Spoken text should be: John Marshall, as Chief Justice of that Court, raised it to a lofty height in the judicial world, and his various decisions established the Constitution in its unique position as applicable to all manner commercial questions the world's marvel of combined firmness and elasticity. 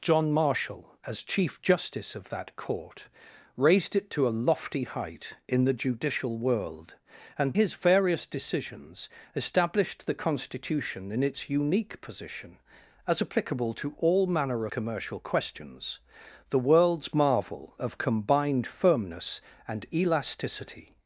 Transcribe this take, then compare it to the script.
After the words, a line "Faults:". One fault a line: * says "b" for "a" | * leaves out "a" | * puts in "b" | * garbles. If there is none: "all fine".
John Marshall, as Chief Justice of that Court, raised it to a lofty height in the judicial world, and his various decisions established the Constitution in its unique position as applicable to all manner commercial questions the world's marvel of combined firmness and elasticity.
Faults:
all fine